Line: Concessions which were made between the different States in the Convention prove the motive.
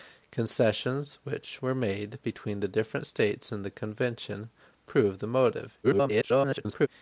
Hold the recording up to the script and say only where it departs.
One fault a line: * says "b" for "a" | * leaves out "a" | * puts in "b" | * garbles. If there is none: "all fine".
* garbles